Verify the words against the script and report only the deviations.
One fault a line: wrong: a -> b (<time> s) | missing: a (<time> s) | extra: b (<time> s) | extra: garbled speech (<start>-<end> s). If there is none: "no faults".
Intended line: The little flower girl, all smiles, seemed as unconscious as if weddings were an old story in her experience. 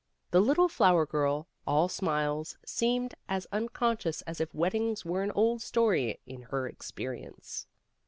no faults